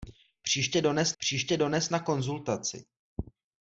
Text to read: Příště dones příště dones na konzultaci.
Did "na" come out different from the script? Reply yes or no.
no